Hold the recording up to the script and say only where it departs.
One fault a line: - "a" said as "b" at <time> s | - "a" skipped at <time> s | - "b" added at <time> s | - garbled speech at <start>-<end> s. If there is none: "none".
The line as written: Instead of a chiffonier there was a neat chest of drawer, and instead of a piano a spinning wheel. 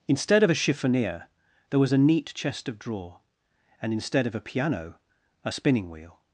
none